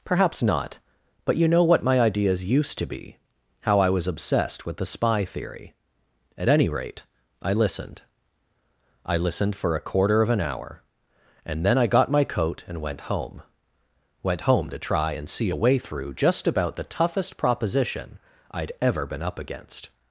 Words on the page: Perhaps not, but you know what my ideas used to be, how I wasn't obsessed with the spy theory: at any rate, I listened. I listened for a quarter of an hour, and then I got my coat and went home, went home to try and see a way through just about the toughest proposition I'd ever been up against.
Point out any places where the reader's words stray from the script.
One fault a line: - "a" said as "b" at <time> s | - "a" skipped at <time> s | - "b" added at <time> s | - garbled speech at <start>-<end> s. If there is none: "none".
- "wasn't" said as "was" at 3.9 s